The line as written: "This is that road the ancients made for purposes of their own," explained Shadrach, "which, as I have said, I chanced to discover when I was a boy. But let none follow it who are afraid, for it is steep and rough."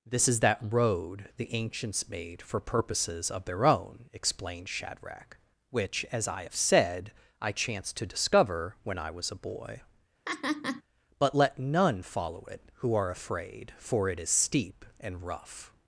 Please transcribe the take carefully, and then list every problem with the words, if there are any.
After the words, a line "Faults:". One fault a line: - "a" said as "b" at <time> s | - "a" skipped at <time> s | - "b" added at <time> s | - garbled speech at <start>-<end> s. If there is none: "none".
"This is that road the ancients made for purposes of their own," explained Shadrach, "which, as I have said, I chanced to discover when I was a boy. But let none follow it who are afraid, for it is steep and rough."
Faults:
none